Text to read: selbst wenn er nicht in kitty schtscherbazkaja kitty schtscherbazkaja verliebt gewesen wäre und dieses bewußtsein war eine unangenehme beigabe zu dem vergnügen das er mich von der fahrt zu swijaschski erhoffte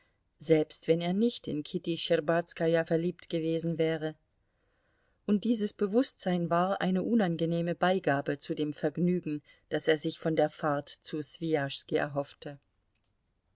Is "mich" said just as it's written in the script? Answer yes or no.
no